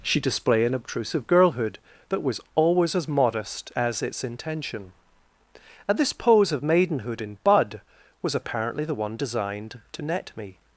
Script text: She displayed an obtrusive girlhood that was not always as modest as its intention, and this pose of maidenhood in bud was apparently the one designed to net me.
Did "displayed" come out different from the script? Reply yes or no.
yes